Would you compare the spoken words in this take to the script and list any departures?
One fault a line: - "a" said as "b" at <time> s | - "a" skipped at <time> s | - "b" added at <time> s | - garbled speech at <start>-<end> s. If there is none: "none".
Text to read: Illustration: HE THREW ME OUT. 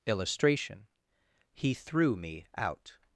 none